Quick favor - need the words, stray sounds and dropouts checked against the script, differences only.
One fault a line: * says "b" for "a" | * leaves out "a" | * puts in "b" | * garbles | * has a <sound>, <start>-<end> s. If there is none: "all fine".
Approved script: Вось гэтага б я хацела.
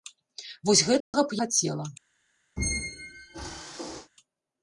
* has a dropout, 1.0-1.1 s
* leaves out "я"
* has a squeak, 2.6-4.1 s